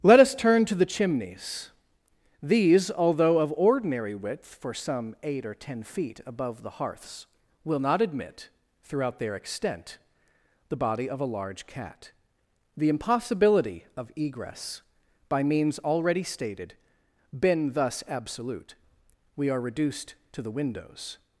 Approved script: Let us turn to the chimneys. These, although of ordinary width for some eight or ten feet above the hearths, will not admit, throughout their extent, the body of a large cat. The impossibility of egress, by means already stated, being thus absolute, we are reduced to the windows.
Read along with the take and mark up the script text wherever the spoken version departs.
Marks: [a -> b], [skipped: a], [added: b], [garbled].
Let us turn to the chimneys. These, although of ordinary width for some eight or ten feet above the hearths, will not admit, throughout their extent, the body of a large cat. The impossibility of egress, by means already stated, [being -> been] thus absolute, we are reduced to the windows.